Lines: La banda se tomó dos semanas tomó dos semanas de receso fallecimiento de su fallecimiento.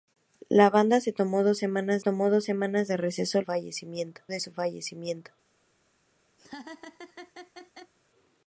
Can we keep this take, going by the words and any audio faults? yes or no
no